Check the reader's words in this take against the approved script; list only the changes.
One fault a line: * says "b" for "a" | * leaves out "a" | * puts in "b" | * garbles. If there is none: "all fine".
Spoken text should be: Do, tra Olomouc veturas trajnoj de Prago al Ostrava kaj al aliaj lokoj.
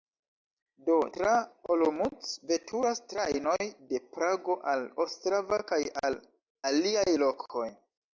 all fine